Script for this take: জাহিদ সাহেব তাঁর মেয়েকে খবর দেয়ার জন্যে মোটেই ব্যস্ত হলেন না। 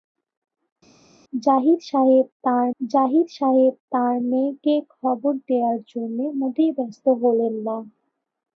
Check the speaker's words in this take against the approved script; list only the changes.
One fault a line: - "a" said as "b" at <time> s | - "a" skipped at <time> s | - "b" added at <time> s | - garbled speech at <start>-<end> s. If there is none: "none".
- "জাহিদ সাহেব তাঁর" added at 2.8 s